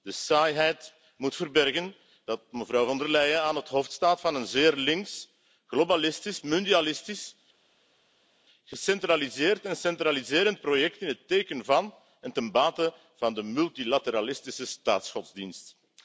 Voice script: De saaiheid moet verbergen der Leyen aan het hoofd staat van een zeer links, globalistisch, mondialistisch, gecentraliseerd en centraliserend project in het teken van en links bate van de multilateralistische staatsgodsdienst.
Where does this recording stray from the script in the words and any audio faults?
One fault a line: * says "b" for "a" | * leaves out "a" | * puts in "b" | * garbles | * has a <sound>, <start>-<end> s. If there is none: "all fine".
* puts in "dat mevrouw Von"
* says "ten" for "links"